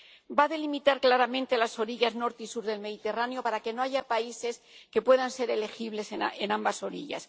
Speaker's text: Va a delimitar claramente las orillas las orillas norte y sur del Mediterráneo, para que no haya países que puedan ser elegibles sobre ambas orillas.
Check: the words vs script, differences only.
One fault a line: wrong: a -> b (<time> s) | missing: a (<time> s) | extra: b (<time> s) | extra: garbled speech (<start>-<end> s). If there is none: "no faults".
missing: las orillas (2.1 s)
wrong: sobre -> en (6.1 s)